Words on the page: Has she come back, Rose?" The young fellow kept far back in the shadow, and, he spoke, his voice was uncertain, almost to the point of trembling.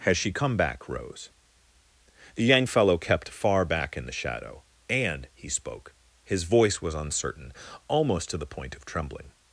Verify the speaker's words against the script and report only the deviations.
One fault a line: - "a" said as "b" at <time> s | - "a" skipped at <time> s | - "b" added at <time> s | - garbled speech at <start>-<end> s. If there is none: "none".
none